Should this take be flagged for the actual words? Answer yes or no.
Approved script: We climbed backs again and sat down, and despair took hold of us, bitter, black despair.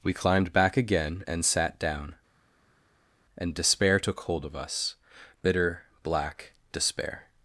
yes